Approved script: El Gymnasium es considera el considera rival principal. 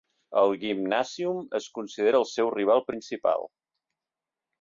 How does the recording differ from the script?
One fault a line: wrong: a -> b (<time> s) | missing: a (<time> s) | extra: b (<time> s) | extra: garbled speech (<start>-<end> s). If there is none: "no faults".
wrong: considera -> seu (2.3 s)